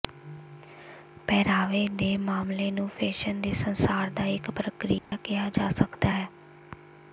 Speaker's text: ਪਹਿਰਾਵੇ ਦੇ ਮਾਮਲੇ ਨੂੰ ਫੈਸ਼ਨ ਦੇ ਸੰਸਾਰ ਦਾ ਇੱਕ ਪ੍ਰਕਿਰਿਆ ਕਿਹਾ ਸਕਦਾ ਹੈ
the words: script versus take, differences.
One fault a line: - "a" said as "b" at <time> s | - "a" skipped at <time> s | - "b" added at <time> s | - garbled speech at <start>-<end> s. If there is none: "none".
- "ਜਾ" added at 5.5 s